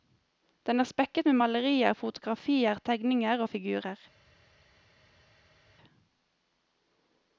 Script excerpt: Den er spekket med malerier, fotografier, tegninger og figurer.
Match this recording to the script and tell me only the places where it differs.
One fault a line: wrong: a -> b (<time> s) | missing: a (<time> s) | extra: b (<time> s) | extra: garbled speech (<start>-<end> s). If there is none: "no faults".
no faults